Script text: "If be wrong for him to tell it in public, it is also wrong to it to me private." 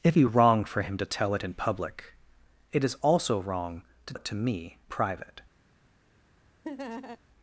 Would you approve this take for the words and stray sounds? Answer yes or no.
no